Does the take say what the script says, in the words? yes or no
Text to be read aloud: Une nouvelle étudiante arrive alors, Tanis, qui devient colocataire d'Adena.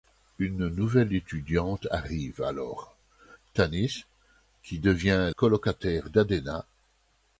yes